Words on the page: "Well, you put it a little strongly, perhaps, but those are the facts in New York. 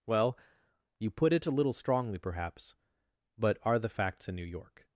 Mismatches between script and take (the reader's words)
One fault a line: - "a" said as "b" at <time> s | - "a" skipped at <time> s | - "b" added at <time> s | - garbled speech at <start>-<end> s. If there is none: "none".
- "those" skipped at 3.6 s